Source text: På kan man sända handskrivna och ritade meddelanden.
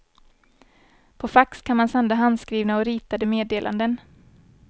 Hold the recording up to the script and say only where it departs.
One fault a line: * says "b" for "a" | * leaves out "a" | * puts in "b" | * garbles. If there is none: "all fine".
* puts in "fax"